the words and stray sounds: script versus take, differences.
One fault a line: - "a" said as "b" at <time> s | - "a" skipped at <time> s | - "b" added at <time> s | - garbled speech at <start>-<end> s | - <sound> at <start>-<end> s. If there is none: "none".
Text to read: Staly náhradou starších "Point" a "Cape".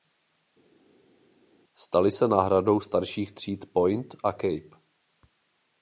- "se" added at 2.1 s
- "tříd" added at 3.3 s